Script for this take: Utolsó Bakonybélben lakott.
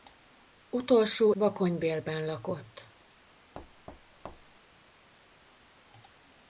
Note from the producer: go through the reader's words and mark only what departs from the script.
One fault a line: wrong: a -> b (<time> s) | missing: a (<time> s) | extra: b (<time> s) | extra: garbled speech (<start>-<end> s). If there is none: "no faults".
no faults